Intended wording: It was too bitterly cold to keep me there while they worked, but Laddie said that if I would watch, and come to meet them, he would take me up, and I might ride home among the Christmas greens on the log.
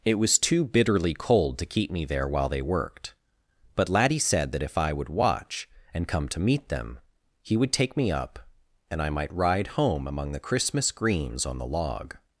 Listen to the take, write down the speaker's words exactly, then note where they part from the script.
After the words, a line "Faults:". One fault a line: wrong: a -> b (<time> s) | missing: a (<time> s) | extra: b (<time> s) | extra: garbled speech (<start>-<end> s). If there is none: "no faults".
It was too bitterly cold to keep me there while they worked, but Laddie said that if I would watch, and come to meet them, he would take me up, and I might ride home among the Christmas greens on the log.
Faults:
no faults